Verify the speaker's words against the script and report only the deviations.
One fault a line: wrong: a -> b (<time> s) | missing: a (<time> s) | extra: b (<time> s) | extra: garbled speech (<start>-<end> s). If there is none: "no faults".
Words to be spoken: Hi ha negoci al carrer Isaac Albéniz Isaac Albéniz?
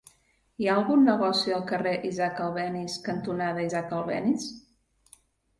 extra: algun (0.8 s)
extra: cantonada (3.1 s)